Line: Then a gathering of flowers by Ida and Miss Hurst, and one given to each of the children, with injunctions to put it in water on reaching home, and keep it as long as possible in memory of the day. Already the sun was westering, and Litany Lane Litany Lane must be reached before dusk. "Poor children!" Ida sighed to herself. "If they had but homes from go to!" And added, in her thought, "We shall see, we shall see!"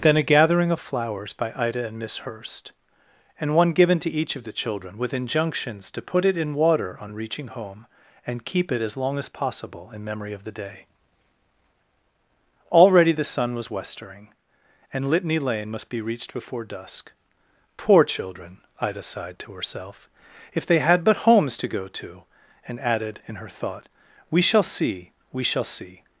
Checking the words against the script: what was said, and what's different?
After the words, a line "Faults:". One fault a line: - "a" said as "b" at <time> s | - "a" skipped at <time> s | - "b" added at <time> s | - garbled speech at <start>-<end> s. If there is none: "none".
Then a gathering of flowers by Ida and Miss Hurst, and one given to each of the children, with injunctions to put it in water on reaching home, and keep it as long as possible in memory of the day. Already the sun was westering, and Litany Lane must be reached before dusk. "Poor children!" Ida sighed to herself. "If they had but homes to go to!" And added, in her thought, "We shall see, we shall see!"
Faults:
- "Litany Lane" skipped at 15.7 s
- "from" said as "to" at 21.6 s